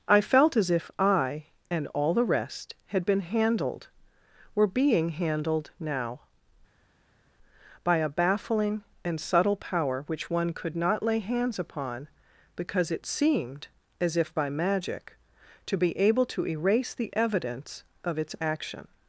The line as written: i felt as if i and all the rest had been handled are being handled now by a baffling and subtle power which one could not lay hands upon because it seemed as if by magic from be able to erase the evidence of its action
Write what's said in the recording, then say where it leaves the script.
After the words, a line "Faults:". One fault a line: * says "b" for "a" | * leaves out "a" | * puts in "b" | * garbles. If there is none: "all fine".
i felt as if i and all the rest had been handled were being handled now by a baffling and subtle power which one could not lay hands upon because it seemed as if by magic to be able to erase the evidence of its action
Faults:
* says "were" for "are"
* says "to" for "from"